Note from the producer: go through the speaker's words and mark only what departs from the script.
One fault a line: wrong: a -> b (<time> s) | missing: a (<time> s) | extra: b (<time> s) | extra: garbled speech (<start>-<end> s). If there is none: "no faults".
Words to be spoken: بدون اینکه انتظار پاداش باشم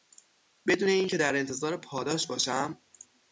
extra: در (1.2 s)